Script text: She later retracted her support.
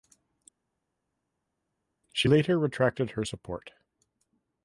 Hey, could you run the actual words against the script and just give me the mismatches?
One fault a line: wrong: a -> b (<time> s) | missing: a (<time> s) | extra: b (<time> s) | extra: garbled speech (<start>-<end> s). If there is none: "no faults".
no faults